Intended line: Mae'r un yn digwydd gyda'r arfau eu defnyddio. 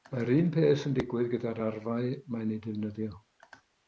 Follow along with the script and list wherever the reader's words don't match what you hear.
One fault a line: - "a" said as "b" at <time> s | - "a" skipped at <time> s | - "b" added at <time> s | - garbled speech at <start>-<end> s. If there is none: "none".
- "peth" added at 0.5 s
- "mae'n" added at 2.4 s